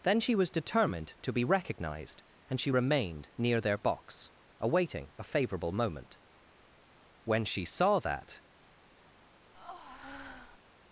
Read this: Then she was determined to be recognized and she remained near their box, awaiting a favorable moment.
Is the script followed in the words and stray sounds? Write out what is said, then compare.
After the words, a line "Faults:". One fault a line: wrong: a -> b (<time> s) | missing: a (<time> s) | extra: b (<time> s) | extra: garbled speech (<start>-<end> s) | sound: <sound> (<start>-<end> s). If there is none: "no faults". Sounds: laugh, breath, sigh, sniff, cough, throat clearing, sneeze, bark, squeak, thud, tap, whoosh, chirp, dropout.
Then she was determined to be recognized and she remained near their box, awaiting a favorable moment. When she saw that
Faults:
extra: When she saw that (7.2 s)
sound: breath (9.5-10.6 s)